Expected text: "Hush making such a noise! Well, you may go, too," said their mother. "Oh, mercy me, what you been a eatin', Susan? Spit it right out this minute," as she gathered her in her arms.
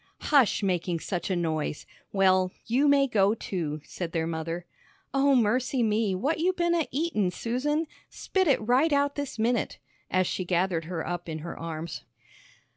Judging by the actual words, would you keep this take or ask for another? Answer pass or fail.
fail